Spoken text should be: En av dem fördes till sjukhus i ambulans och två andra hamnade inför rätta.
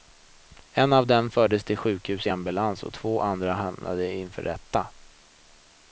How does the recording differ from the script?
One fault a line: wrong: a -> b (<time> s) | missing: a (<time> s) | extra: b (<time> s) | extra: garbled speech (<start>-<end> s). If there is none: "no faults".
no faults